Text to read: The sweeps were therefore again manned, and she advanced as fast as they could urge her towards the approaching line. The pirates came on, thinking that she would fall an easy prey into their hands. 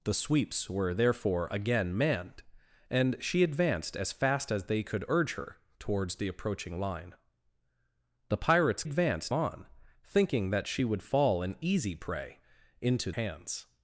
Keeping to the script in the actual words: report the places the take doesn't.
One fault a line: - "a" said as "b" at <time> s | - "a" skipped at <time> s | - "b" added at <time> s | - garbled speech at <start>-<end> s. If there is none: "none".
- "came" said as "advanced" at 8.8 s
- "their" skipped at 13.1 s